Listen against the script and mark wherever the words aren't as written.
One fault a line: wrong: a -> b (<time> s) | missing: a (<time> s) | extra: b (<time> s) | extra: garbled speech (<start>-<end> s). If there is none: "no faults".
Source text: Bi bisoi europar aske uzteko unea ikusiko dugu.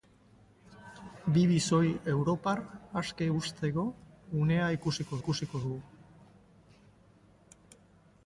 extra: ikusiko (5.2 s)